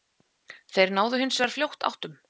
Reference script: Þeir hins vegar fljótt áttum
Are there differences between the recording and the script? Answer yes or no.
yes